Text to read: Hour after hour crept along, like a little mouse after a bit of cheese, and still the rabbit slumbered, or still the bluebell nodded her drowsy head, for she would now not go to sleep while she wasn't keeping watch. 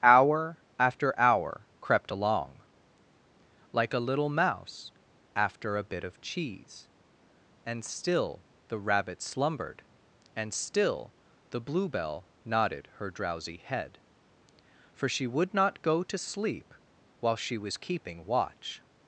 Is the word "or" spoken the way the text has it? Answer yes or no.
no